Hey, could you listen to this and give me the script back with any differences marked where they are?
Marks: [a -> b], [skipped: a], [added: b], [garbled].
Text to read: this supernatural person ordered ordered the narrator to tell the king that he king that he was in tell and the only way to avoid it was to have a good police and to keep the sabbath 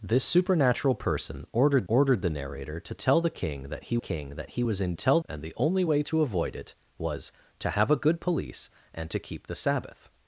this supernatural person ordered ordered the narrator to tell the king that he king that he was in tell and the only way to avoid it was to have a good police and to keep the sabbath